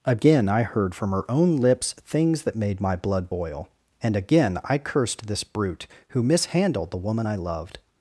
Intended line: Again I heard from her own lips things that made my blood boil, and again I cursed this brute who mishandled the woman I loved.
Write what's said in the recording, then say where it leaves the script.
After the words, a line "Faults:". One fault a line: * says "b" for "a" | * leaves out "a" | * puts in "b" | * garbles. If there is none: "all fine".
Again I heard from her own lips things that made my blood boil, and again I cursed this brute who mishandled the woman I loved.
Faults:
all fine